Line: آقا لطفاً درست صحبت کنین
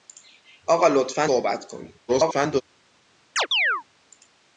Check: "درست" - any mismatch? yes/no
yes